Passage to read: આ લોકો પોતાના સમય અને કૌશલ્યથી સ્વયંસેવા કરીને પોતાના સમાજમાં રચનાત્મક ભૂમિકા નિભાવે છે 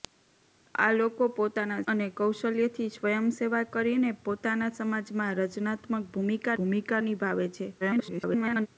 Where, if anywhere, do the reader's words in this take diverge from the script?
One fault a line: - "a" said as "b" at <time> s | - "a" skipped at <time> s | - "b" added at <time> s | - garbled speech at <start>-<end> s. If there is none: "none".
- "સમય" skipped at 1.8 s
- "ભૂમિકા" added at 6.6 s
- garbled speech at 7.8-8.7 s